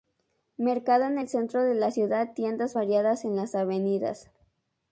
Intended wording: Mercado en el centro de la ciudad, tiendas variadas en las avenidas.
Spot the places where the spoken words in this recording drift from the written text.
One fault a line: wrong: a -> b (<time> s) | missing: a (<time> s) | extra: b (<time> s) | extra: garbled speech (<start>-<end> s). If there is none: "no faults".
no faults